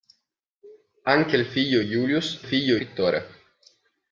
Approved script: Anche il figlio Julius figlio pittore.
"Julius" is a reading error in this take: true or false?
false